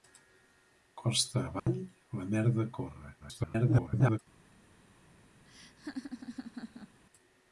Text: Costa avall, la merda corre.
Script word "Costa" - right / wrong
right